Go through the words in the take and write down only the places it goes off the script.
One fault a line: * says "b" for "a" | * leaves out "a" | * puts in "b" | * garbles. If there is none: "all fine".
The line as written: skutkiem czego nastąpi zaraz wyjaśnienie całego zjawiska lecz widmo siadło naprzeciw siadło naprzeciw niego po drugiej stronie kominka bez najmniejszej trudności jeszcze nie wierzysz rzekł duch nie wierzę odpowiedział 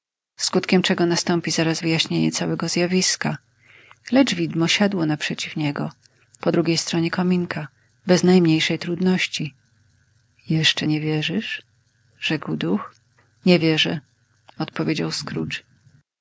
* leaves out "siadło naprzeciw"